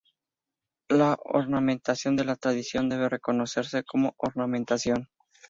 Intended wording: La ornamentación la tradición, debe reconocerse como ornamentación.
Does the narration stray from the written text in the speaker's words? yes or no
yes